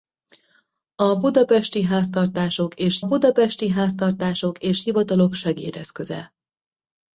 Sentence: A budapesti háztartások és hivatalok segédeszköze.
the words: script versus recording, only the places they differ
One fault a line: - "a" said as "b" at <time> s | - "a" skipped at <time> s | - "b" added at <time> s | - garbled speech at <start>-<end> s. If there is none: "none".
- "budapesti háztartások és" added at 3.0 s